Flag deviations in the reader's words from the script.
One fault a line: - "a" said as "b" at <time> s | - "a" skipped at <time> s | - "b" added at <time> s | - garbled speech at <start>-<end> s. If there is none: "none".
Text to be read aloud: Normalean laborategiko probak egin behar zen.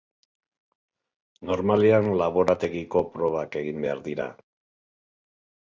- "zen" said as "dira" at 4.1 s